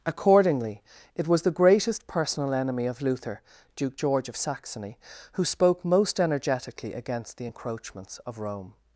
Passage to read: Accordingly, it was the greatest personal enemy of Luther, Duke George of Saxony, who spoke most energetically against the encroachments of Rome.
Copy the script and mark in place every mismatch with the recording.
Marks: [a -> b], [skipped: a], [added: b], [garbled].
Accordingly, it was the greatest personal enemy of Luther, Duke George of Saxony, who spoke most energetically against the encroachments of Rome.